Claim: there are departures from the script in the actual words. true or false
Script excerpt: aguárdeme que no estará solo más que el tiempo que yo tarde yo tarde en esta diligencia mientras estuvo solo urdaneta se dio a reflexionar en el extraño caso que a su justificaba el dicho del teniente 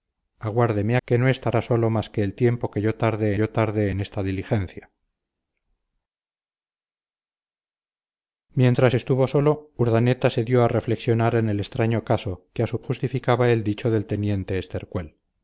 false